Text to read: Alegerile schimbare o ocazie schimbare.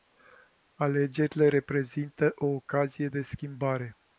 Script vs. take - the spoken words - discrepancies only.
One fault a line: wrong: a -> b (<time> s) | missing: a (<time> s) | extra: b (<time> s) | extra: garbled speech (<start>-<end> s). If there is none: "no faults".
wrong: schimbare -> reprezintă (1.5 s)
extra: de (3.1 s)